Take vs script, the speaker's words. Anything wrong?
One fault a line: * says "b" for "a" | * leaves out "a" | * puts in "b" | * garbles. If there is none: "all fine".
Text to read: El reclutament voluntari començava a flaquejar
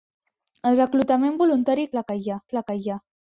* says "flaquejar" for "començava"